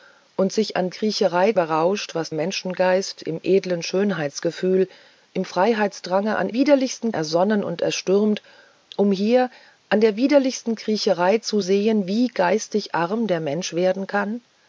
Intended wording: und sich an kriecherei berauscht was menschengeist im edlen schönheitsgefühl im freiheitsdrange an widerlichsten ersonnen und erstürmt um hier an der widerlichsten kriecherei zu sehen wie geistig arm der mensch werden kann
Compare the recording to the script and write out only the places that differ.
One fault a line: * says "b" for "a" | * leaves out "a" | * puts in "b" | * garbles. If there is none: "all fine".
all fine